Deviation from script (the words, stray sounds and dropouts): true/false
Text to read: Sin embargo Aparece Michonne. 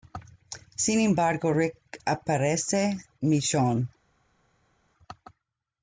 true